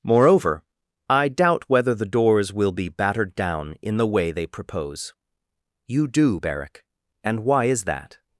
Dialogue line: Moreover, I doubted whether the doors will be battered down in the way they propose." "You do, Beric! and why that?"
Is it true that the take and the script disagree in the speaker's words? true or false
true